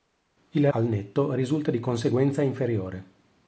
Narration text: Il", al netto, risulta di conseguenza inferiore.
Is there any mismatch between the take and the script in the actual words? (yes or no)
no